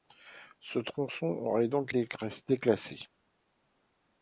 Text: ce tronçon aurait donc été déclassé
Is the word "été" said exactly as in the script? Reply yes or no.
no